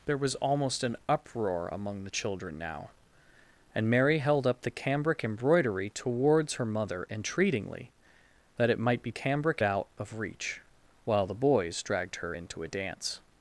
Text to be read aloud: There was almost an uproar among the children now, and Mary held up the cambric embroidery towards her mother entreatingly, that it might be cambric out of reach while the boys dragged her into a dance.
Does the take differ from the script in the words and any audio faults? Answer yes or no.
no